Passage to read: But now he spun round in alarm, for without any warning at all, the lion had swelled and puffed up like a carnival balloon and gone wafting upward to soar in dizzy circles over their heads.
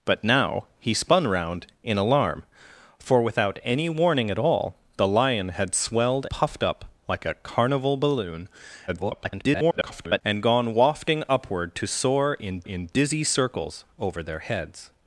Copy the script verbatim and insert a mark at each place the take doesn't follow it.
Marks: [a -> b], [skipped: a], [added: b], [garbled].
But now he spun round in alarm, for without any warning at all, the lion had swelled [skipped: and] puffed up like a carnival balloon [garbled] and gone wafting upward to soar in [added: in] dizzy circles over their heads.